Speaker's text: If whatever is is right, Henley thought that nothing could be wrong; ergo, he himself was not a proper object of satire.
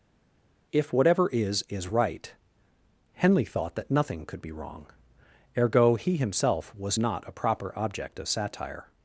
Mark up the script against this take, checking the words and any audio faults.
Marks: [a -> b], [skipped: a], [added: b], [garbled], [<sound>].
If whatever is is right, Henley thought that nothing could be wrong; ergo, he himself was not a proper object of satire.